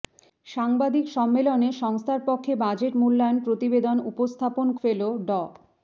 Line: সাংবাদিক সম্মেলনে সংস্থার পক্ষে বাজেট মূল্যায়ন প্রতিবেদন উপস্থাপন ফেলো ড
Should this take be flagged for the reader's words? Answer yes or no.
no